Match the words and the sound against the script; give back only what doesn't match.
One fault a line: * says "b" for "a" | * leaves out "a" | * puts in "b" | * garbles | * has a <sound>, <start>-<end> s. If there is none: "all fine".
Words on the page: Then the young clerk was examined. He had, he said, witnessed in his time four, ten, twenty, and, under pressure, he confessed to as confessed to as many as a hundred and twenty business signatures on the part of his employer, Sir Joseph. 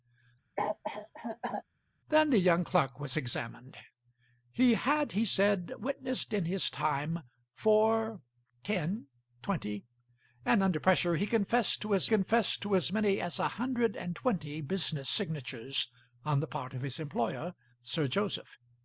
* has a cough, 0.6-1.6 s